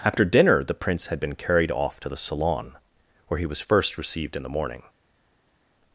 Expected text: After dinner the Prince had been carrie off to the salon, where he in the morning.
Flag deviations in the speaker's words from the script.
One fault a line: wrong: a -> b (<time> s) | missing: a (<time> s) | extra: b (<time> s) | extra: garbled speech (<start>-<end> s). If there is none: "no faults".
wrong: carrie -> carried (1.4 s)
extra: was first received (3.5 s)